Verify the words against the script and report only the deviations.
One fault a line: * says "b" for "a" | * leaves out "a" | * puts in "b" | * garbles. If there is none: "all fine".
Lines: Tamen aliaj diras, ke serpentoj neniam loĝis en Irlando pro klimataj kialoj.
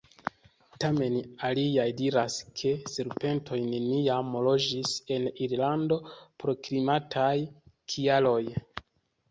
all fine